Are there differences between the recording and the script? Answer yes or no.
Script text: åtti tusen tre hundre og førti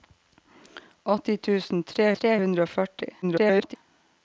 yes